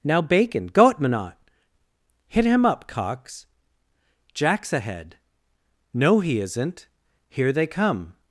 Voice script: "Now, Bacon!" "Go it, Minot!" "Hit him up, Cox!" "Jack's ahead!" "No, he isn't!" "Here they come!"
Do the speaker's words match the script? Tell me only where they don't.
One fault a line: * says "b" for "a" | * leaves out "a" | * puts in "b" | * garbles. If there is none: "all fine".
all fine